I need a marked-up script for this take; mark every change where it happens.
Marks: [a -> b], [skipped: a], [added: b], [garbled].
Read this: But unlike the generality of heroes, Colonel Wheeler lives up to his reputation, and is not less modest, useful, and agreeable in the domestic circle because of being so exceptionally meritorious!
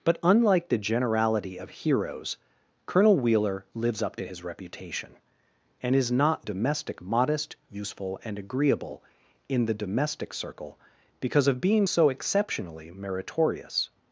But unlike the generality of heroes, Colonel Wheeler lives up to his reputation, and is not [less -> domestic] modest, useful, and agreeable in the domestic circle because of being so exceptionally meritorious!